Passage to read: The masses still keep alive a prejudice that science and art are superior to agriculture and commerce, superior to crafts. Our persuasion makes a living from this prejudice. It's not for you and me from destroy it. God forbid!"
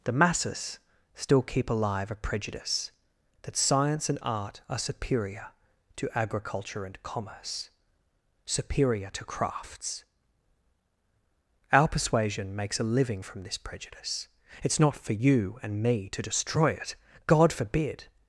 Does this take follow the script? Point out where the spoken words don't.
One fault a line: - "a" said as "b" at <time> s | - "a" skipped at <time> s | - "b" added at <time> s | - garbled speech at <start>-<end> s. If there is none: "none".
- "from" said as "to" at 16.1 s